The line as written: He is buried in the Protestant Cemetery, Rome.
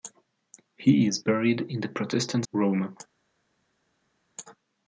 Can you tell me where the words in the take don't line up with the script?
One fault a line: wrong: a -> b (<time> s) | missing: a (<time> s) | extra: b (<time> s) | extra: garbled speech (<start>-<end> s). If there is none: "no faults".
missing: Cemetery (2.5 s)